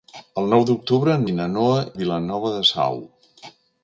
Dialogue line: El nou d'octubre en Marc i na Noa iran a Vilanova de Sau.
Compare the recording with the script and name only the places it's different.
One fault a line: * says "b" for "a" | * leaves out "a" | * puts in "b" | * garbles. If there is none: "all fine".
* leaves out "Marc"
* leaves out "iran"